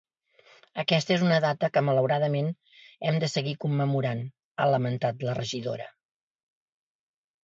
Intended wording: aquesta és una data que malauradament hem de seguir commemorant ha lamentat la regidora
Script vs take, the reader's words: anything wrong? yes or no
no